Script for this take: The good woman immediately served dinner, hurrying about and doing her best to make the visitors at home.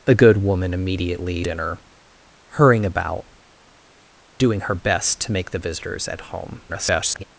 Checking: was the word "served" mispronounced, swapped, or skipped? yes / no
yes